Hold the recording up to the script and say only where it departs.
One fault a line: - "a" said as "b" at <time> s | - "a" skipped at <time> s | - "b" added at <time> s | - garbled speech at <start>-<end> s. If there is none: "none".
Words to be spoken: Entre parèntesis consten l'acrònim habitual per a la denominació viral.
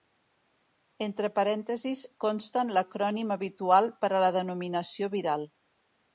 none